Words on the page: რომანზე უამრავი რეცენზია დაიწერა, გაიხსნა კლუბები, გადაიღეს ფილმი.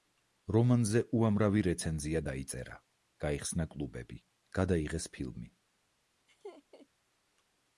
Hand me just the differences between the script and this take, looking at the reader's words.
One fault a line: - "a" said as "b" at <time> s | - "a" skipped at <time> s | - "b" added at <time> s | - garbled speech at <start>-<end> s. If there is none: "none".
none